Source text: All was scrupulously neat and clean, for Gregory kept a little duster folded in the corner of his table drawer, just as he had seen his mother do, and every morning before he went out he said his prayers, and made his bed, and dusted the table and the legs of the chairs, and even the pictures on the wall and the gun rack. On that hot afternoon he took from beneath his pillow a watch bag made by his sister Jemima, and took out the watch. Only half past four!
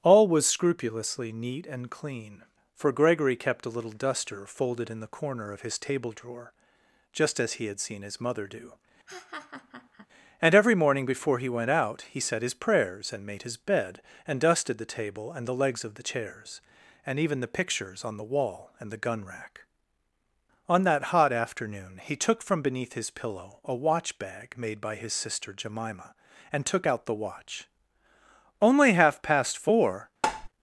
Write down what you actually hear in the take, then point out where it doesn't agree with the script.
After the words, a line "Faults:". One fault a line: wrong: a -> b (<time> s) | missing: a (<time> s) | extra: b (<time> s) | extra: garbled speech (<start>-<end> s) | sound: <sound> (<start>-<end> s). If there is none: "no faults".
All was scrupulously neat and clean, for Gregory kept a little duster folded in the corner of his table drawer, just as he had seen his mother do, and every morning before he went out he said his prayers, and made his bed, and dusted the table and the legs of the chairs, and even the pictures on the wall and the gun rack. On that hot afternoon he took from beneath his pillow a watch bag made by his sister Jemima, and took out the watch. Only half past four!
Faults:
sound: laugh (9.1-10.1 s)
sound: tap (30.2-30.5 s)